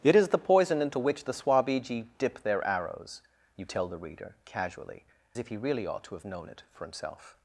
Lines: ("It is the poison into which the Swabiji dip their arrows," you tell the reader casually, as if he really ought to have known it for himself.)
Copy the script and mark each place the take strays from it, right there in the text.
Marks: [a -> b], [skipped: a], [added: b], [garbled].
("It is the poison into which the Swabiji dip their arrows," you tell the reader casually, [skipped: as] if he really ought to have known it for himself.)